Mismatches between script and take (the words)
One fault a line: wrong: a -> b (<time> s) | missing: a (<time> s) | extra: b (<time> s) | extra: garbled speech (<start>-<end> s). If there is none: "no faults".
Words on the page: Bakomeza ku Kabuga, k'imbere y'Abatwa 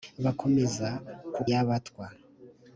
missing: Kabuga k'imbere (1.4 s)